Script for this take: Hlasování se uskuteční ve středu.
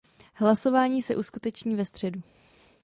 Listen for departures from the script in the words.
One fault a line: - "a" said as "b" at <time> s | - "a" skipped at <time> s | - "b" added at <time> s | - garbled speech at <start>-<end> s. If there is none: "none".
none